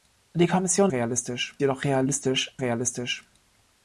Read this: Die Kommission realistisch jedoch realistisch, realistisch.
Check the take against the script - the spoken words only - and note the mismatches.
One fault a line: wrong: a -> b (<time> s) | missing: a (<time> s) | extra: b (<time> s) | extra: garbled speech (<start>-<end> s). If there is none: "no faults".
no faults